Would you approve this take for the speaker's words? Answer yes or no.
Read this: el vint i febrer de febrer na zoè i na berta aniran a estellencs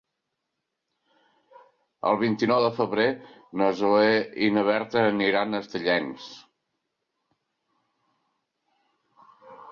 no